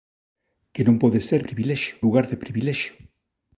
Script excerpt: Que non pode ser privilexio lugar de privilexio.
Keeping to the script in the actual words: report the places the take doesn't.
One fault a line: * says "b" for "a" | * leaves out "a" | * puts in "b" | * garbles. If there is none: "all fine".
all fine